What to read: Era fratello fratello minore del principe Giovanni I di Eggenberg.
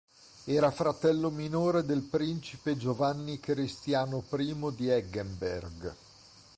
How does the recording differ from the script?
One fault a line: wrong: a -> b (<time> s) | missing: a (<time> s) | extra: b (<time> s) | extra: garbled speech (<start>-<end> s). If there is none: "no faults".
missing: fratello (1.3 s)
extra: Cristiano (3.4 s)